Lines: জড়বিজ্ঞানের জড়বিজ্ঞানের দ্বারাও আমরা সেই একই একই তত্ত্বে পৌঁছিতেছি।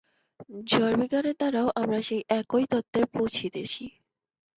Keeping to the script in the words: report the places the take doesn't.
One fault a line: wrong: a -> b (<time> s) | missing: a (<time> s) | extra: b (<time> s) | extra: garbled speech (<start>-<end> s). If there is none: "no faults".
missing: জড়বিজ্ঞানের (1.4 s)
missing: একই (2.6 s)